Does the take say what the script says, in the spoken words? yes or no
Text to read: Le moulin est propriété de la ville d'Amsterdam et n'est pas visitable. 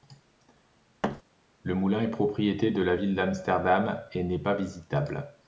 yes